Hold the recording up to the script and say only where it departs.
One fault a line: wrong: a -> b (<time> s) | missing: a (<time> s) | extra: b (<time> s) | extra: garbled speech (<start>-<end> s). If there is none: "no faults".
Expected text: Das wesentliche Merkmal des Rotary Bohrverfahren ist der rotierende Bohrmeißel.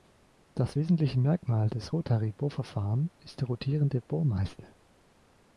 no faults